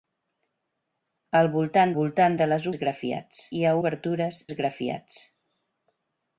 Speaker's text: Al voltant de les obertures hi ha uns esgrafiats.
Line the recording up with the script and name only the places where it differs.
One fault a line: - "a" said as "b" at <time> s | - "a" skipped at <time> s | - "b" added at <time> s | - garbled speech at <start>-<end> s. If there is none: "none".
- "voltant" added at 2.0 s
- "obertures" said as "esgrafiats" at 2.7 s
- "uns" said as "obertures" at 3.8 s